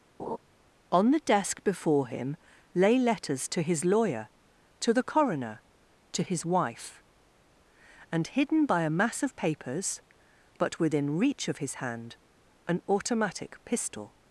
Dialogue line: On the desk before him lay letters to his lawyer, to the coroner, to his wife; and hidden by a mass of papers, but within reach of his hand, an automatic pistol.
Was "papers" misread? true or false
false